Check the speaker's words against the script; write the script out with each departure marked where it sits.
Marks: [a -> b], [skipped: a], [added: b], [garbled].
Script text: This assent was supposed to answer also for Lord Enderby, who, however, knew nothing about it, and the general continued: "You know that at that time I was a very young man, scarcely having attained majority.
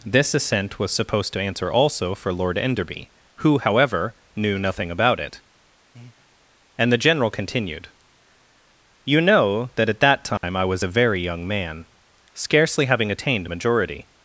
This assent was supposed to answer also for Lord Enderby, who, however, knew nothing about it, and the general continued: "You know that at that time I was a very young man, scarcely having attained majority.